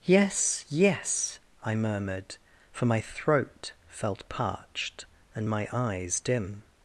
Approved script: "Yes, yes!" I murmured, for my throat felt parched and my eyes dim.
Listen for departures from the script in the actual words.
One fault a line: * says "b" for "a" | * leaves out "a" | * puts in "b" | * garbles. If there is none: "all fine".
all fine